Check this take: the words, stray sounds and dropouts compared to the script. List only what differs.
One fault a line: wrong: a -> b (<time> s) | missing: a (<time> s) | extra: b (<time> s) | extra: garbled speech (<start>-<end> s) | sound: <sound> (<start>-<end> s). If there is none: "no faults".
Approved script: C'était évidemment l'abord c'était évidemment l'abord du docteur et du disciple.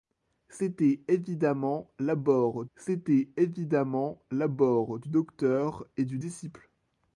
no faults